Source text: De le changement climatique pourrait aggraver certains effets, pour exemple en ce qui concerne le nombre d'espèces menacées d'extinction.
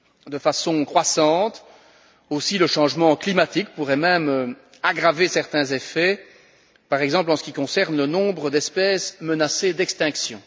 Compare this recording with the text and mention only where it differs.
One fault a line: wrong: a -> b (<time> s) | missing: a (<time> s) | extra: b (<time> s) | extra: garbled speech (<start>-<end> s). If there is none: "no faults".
extra: façon croissante aussi (0.4 s)
extra: même (4.0 s)
wrong: pour -> par (6.9 s)